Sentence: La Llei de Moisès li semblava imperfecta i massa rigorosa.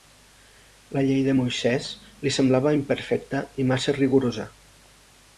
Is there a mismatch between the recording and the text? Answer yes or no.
no